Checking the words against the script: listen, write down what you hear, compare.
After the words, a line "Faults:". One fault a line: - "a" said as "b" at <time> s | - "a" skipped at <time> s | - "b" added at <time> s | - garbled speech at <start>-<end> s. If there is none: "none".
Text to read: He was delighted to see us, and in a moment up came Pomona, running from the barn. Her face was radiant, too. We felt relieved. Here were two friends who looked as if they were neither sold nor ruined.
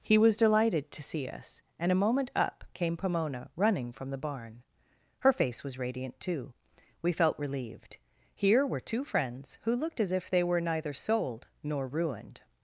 He was delighted to see us, and a moment up came Pomona, running from the barn. Her face was radiant, too. We felt relieved. Here were two friends who looked as if they were neither sold nor ruined.
Faults:
- "in" skipped at 1.9 s